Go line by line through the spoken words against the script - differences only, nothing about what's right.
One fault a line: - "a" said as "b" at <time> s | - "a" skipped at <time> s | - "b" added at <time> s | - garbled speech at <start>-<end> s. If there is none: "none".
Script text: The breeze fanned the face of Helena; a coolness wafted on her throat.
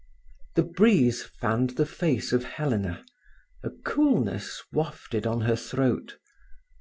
none